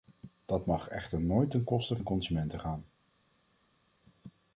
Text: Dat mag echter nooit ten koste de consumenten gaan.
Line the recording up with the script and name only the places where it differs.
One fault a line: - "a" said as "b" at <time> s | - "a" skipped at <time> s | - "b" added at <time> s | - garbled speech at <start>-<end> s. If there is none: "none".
none